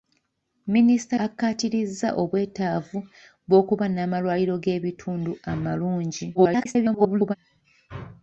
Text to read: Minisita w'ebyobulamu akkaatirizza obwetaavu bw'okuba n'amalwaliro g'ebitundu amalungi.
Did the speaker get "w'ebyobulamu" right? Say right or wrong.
wrong